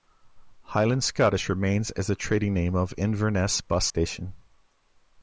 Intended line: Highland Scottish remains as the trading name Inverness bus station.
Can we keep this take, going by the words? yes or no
no